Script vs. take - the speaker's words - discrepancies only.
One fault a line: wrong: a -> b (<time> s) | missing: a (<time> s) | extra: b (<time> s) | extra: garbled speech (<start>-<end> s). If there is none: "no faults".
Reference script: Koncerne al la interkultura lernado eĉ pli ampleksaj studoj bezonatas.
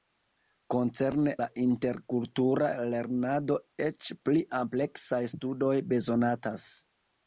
missing: al (1.3 s)